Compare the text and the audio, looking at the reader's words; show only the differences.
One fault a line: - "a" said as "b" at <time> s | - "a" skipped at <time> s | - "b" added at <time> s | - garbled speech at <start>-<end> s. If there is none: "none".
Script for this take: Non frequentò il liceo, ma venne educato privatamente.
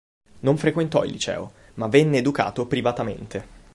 none